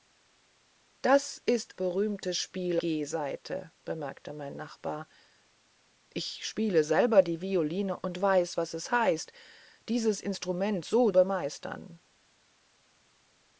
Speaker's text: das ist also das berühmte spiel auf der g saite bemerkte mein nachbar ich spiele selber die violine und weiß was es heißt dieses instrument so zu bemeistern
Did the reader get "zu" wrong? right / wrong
wrong